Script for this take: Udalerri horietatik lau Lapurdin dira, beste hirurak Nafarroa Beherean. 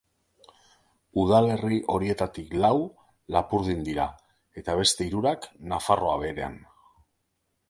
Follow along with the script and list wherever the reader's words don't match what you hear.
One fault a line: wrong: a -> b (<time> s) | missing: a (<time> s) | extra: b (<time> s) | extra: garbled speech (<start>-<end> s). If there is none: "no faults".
extra: eta (4.6 s)